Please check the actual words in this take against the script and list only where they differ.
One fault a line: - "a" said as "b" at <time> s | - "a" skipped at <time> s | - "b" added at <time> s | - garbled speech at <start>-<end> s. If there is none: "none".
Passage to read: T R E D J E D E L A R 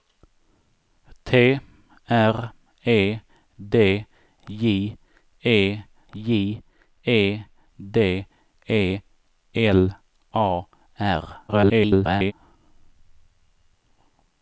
- "J E" added at 6.1 s
- garbled speech at 11.5-12.3 s